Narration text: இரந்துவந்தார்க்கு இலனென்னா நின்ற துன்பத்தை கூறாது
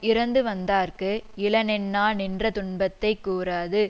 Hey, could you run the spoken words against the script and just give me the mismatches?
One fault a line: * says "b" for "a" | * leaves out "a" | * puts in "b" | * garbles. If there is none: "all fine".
all fine